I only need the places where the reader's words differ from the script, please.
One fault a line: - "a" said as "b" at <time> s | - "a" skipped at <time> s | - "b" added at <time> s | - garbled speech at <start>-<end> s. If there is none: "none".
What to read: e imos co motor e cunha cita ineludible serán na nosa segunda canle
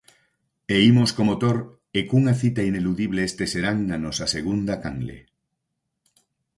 - "este" added at 3.3 s